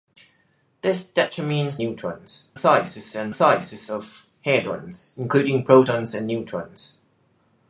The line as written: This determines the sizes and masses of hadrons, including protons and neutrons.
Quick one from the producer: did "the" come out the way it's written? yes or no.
no